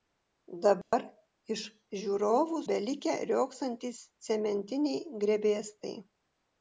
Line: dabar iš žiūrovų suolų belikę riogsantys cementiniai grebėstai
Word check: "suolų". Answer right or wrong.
wrong